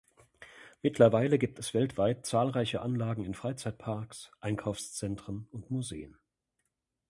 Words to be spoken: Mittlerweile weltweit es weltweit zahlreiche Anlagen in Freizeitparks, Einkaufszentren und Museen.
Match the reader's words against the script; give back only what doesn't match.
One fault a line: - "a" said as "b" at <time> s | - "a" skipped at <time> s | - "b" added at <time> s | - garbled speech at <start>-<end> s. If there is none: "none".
- "weltweit" said as "gibt" at 1.4 s